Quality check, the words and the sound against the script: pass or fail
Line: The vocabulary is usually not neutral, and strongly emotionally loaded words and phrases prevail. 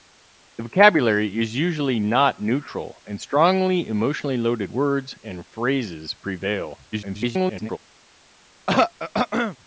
fail